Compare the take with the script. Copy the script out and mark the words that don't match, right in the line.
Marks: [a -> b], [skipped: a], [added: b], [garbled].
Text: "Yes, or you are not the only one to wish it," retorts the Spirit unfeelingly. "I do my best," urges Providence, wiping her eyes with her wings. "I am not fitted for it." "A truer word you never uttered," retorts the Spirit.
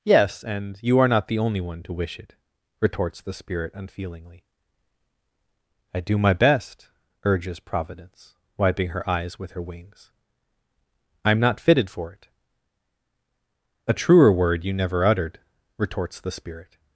"Yes, [or -> and] you are not the only one to wish it," retorts the Spirit unfeelingly. "I do my best," urges Providence, wiping her eyes with her wings. "I am not fitted for it." "A truer word you never uttered," retorts the Spirit.